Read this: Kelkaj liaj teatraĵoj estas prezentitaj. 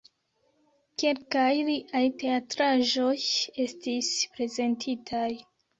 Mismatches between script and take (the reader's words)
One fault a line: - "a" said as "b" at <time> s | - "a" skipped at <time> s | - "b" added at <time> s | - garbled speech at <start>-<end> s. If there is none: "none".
- "estas" said as "estis" at 3.7 s